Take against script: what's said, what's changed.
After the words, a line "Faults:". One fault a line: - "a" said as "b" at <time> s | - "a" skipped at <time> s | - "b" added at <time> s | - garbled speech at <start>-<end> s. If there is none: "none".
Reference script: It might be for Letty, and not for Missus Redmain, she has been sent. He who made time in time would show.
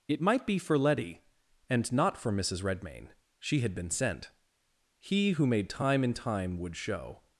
It might be for Letty, and not for Missus Redmain, she had been sent. He who made time in time would show.
Faults:
- "has" said as "had" at 3.6 s